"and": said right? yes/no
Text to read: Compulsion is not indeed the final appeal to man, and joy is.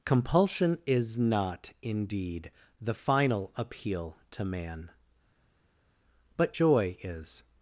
no